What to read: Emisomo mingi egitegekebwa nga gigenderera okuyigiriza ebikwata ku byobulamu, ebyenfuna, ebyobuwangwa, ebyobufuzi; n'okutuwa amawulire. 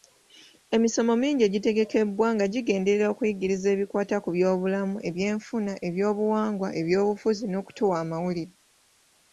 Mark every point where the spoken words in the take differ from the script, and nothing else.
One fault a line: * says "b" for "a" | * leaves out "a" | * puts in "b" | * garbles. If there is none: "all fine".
all fine